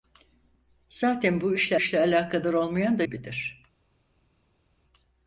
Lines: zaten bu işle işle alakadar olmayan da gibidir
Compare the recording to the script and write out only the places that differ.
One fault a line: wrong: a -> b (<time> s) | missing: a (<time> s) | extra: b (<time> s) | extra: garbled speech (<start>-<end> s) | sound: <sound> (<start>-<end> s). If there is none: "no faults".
no faults